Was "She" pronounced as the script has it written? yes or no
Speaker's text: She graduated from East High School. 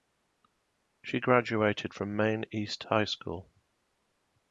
yes